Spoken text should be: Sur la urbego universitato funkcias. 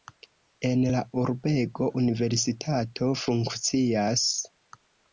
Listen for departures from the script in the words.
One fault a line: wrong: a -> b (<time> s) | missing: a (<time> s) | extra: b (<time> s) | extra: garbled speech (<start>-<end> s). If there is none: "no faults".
wrong: Sur -> En (0.7 s)